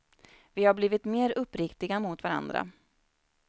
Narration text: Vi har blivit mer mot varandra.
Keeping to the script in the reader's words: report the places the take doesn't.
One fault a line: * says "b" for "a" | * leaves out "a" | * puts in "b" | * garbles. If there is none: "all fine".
* puts in "uppriktiga"